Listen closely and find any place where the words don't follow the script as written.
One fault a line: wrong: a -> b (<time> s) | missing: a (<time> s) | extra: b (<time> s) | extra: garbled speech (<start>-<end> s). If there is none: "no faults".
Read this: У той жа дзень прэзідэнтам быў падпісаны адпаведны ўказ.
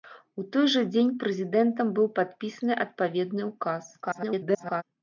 extra: garbled speech (4.0-4.8 s)